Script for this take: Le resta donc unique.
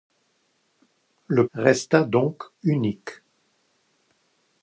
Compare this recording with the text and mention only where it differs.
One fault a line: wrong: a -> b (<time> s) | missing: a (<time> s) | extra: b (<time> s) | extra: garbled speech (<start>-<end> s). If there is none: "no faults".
no faults